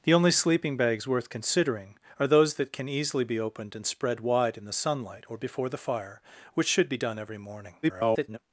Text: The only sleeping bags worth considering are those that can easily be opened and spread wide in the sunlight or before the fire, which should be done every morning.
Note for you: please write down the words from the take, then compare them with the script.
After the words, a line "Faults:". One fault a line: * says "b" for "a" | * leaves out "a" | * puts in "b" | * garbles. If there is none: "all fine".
The only sleeping bags worth considering are those that can easily be opened and spread wide in the sunlight or before the fire, which should be done every morning. [garbled]
Faults:
* garbles